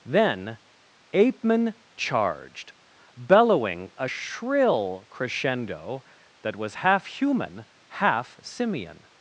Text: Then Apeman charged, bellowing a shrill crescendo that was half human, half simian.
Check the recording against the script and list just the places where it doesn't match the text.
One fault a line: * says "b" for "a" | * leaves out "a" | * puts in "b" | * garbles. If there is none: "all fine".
all fine